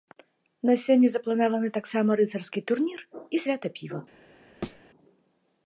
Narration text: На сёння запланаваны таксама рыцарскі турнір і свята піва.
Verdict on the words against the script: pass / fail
pass